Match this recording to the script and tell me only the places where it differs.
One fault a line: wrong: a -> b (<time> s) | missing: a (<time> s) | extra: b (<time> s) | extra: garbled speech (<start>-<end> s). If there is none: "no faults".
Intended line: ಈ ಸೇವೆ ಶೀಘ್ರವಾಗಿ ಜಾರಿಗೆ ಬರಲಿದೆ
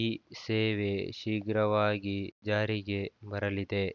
no faults